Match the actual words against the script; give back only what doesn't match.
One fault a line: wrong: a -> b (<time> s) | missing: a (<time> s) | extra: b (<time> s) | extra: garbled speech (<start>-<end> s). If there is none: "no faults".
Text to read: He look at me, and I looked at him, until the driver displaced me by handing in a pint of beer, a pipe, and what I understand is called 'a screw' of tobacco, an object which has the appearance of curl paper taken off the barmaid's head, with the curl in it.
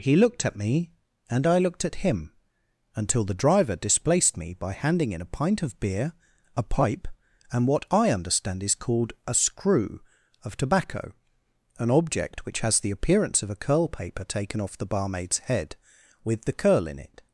wrong: look -> looked (0.1 s)
extra: a (13.5 s)